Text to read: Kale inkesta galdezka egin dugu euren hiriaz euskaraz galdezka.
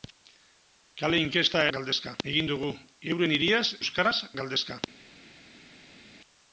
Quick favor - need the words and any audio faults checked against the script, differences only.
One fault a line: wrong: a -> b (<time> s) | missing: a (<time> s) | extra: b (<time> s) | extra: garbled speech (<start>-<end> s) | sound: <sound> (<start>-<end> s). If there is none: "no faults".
no faults